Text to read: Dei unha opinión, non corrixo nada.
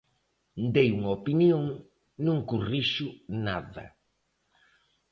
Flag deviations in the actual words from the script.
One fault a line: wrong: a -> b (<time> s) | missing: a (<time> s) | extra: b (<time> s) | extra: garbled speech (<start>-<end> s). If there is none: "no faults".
no faults